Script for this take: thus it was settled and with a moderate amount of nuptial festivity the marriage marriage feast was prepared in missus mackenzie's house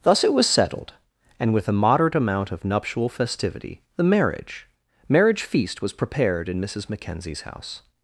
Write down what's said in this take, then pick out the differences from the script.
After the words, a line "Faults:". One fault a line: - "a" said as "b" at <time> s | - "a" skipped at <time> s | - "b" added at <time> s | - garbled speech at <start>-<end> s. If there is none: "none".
thus it was settled and with a moderate amount of nuptial festivity the marriage marriage feast was prepared in missus mackenzie's house
Faults:
none